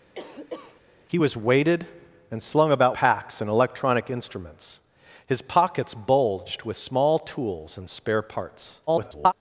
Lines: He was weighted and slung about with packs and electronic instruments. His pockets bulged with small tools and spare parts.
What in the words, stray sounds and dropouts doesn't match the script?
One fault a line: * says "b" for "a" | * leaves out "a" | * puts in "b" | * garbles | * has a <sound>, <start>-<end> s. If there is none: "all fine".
* has a cough, 0.2-0.8 s
* leaves out "with"
* garbles